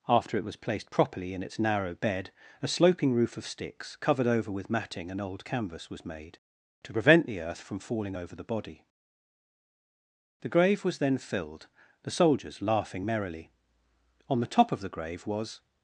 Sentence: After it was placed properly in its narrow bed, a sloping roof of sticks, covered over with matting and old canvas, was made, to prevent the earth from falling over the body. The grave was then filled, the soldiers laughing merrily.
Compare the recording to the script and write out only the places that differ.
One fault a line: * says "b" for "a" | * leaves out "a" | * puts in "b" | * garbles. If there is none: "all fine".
* puts in "On the top of the grave was"